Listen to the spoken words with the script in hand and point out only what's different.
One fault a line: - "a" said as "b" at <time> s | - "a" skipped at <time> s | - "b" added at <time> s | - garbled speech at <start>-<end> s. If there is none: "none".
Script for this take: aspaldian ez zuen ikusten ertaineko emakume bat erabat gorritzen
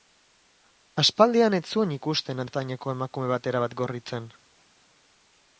none